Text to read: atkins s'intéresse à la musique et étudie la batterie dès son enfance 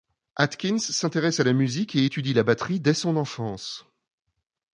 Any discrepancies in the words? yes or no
no